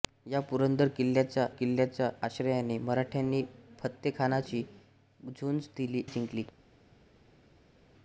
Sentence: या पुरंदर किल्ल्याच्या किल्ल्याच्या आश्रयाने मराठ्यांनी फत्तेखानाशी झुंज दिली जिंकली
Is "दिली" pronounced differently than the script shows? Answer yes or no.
no